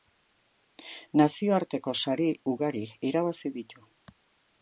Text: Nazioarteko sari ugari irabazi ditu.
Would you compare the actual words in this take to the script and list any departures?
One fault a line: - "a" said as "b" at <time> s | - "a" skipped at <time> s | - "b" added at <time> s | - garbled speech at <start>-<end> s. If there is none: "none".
none